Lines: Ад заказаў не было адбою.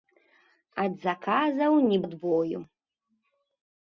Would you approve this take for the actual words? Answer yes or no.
no